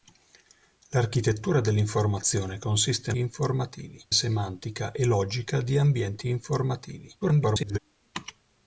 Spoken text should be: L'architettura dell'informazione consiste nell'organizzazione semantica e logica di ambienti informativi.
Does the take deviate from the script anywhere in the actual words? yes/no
yes